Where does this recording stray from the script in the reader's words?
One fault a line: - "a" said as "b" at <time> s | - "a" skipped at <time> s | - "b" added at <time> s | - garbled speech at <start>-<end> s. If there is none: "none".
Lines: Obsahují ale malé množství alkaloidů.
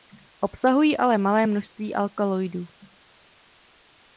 none